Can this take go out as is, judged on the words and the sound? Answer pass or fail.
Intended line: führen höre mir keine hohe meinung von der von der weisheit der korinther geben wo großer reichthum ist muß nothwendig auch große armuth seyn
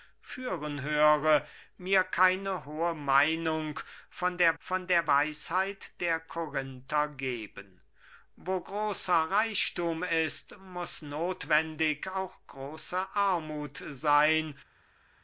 pass